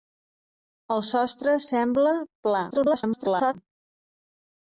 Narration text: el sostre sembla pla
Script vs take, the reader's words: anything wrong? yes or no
yes